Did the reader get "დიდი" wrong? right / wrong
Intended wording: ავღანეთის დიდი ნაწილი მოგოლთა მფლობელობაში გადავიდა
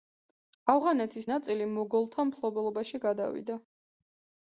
wrong